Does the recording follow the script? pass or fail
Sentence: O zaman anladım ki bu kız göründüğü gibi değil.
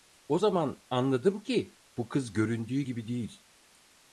pass